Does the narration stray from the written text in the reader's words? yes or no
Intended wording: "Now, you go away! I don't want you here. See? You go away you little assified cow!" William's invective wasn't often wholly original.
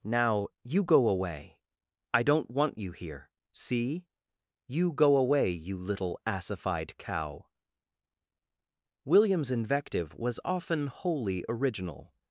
yes